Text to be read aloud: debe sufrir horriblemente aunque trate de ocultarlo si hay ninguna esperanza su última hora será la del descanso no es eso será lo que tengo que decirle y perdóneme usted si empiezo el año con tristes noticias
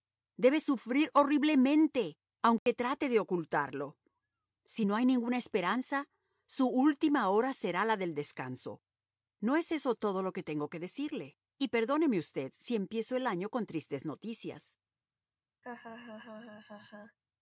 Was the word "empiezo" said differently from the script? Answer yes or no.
no